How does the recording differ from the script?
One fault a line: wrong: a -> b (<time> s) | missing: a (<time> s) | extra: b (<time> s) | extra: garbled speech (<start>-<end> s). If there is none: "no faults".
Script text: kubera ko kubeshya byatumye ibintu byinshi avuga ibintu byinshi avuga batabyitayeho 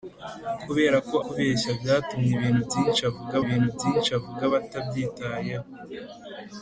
no faults